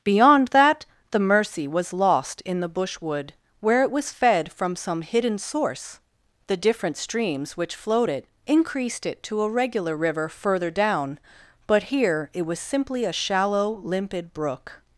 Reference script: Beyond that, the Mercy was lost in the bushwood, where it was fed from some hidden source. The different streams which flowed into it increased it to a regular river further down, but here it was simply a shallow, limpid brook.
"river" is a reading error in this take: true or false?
false